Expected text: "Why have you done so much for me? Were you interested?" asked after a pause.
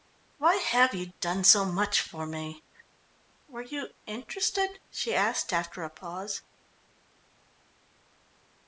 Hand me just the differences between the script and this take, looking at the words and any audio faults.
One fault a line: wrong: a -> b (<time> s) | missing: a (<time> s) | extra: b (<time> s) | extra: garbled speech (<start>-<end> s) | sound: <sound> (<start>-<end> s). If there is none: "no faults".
extra: she (4.9 s)